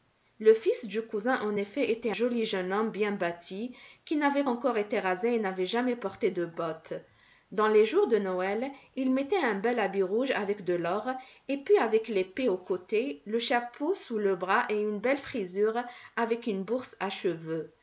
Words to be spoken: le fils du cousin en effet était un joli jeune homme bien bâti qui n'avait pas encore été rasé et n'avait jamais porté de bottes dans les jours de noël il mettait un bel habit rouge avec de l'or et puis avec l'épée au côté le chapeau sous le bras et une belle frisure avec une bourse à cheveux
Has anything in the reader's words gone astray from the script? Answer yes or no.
yes